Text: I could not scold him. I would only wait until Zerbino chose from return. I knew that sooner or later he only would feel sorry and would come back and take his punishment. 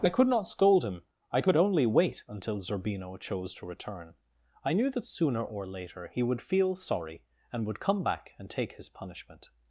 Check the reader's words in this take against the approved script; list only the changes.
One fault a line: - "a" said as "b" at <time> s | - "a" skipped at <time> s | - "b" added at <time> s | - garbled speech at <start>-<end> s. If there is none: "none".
- "would" said as "could" at 1.4 s
- "from" said as "to" at 3.5 s
- "only" skipped at 6.2 s